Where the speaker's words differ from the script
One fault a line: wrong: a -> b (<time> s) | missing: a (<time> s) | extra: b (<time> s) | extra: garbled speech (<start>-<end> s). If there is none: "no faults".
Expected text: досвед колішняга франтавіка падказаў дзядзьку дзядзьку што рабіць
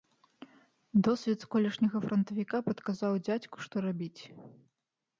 missing: дзядзьку (3.6 s)